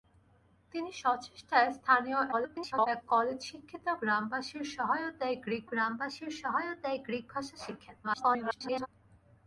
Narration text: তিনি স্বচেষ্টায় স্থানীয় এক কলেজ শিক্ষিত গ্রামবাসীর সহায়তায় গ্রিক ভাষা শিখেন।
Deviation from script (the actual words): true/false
true